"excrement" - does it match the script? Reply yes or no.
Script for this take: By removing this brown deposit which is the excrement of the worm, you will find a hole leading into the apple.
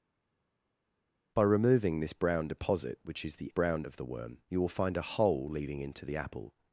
no